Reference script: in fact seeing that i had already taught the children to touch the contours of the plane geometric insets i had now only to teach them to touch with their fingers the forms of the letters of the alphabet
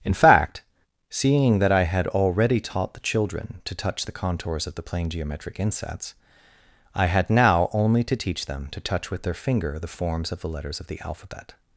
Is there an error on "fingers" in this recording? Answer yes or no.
yes